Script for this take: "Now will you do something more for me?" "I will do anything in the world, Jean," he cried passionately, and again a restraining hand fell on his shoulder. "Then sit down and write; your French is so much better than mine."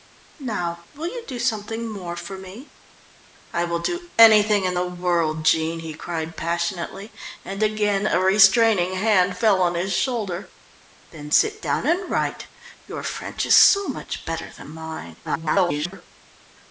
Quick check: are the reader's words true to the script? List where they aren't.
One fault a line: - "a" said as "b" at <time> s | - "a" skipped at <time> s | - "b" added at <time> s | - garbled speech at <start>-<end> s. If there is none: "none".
- garbled speech at 15.2-16.1 s